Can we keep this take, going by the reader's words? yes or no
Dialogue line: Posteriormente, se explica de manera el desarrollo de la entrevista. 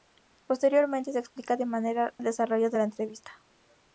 yes